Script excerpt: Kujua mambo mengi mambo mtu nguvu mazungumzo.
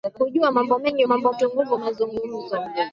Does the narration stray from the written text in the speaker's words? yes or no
no